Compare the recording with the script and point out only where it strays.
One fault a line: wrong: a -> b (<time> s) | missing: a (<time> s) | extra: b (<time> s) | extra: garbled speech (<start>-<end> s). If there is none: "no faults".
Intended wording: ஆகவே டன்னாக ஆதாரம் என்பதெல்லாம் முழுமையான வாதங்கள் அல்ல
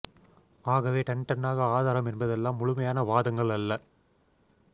extra: டன் (1.0 s)